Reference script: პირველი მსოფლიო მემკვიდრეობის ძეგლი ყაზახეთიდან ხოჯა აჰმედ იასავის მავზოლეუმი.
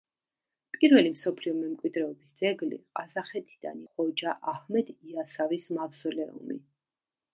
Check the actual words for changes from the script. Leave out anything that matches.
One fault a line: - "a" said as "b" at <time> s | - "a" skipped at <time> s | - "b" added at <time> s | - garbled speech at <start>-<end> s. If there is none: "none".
none